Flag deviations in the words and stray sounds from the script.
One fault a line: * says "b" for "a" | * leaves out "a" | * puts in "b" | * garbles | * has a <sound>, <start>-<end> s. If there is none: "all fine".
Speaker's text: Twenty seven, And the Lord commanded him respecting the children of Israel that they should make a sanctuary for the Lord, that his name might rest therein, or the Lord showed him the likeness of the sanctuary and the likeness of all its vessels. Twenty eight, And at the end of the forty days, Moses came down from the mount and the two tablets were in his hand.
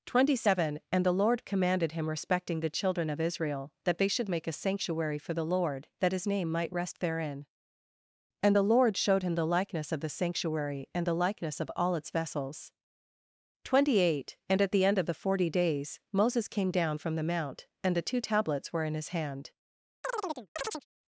* says "and" for "or"
* has a chirp, 20.0-20.9 s